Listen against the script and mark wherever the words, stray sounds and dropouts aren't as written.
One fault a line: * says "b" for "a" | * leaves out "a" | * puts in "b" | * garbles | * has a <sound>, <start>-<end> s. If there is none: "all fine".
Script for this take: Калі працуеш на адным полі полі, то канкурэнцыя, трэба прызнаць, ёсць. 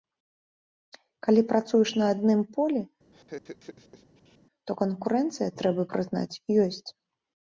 * leaves out "полі"
* has a laugh, 3.1-4.4 s